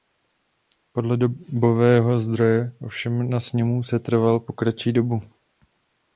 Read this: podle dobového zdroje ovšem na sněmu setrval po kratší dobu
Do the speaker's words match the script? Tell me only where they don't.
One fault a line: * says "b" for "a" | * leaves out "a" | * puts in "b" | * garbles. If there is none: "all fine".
all fine